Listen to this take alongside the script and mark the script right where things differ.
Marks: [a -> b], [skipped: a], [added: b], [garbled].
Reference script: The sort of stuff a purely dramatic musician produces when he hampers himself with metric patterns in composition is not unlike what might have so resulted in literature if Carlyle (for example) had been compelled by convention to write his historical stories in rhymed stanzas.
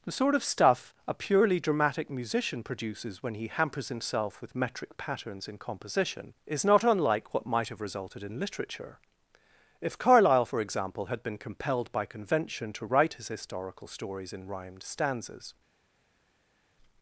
The sort of stuff a purely dramatic musician produces when he hampers himself with metric patterns in composition is not unlike what might have [skipped: so] resulted in literature if Carlyle (for example) had been compelled by convention to write his historical stories in rhymed stanzas.